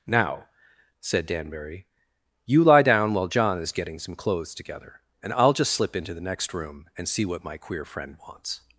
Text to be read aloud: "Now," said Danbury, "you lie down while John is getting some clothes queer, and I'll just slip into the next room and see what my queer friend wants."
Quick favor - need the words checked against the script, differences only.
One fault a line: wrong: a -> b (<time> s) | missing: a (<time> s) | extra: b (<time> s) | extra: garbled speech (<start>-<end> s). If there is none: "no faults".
wrong: queer -> together (4.5 s)